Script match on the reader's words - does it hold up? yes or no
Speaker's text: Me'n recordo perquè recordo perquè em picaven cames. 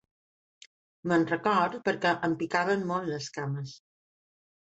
no